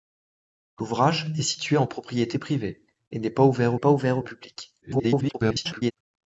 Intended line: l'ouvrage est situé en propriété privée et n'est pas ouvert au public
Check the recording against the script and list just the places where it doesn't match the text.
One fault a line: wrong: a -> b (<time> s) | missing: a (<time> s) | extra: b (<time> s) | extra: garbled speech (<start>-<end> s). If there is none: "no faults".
extra: pas ouvert (3.8 s)
extra: garbled speech (4.8-5.9 s)